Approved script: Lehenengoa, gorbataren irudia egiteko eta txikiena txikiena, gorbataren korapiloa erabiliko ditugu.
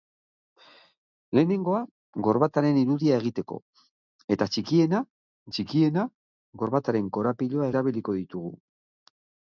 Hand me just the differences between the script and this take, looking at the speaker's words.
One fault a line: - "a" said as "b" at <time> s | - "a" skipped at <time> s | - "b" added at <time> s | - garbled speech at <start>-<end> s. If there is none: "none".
none